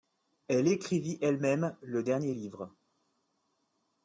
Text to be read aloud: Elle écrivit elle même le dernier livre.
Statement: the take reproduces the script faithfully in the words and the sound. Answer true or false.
true